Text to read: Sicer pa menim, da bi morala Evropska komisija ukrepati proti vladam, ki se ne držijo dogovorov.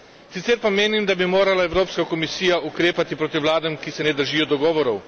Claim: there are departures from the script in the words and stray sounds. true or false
false